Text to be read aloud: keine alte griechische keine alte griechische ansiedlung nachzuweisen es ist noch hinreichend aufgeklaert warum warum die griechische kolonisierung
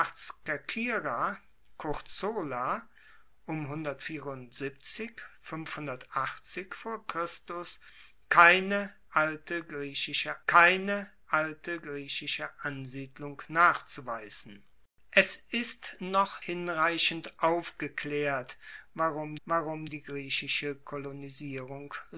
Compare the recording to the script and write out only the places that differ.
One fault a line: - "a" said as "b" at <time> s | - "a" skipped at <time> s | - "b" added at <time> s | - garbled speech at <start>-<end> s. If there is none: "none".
none